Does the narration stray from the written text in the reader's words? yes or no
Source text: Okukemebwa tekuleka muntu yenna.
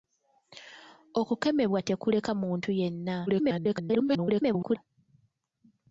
yes